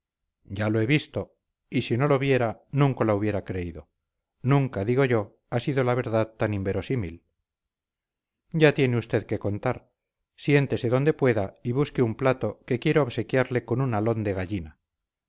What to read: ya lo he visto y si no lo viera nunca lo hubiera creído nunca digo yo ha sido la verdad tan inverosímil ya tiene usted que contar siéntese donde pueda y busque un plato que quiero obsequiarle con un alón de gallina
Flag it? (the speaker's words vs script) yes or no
no